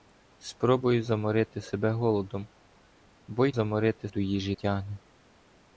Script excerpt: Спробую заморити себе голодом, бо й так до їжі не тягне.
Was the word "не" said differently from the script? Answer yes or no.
yes